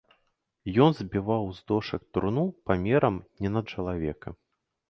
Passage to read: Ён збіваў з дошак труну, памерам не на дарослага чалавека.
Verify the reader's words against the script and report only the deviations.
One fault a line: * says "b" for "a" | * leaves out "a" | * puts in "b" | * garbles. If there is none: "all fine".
* leaves out "дарослага"